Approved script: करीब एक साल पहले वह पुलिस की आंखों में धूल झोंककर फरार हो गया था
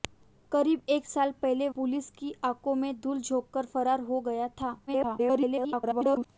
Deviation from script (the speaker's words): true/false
true